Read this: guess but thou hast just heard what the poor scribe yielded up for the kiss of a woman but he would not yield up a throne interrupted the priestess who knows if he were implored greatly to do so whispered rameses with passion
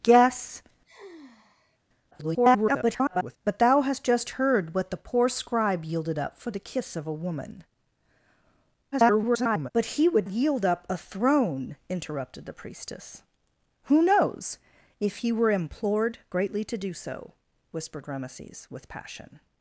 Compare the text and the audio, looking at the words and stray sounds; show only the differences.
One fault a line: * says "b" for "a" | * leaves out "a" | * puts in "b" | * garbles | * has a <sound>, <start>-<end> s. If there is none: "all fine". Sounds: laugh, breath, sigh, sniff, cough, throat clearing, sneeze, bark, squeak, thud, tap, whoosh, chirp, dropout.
* has a sigh, 0.8-1.8 s
* garbles
* garbles
* leaves out "not"